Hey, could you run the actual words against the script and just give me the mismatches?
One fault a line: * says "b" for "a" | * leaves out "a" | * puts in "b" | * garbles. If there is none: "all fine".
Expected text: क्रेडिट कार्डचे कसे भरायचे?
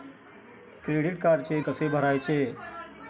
all fine